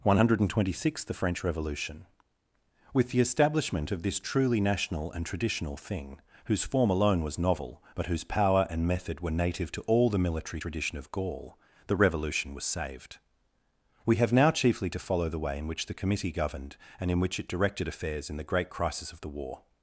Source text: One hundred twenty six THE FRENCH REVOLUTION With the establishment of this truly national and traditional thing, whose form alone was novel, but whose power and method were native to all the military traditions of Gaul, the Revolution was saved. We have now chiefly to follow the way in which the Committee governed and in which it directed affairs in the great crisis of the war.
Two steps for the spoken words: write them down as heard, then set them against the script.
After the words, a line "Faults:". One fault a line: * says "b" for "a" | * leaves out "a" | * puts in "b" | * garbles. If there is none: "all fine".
One hundred twenty six THE FRENCH REVOLUTION With the establishment of this truly national and traditional thing, whose form alone was novel, but whose power and method were native to all the military tradition of Gaul, the Revolution was saved. We have now chiefly to follow the way in which the Committee governed and in which it directed affairs in the great crisis of the war.
Faults:
* says "tradition" for "traditions"